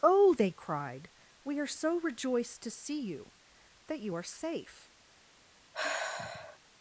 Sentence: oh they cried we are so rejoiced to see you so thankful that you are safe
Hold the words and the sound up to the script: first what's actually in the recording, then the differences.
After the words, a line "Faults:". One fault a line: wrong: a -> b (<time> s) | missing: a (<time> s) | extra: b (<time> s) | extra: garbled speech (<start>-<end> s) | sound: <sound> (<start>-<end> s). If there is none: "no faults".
oh they cried we are so rejoiced to see you that you are safe
Faults:
missing: so thankful (3.3 s)
sound: sigh (5.7-6.6 s)